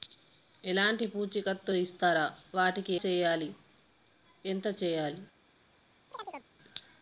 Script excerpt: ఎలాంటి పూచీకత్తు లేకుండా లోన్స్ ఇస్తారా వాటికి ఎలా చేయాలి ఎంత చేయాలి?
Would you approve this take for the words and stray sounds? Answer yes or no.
no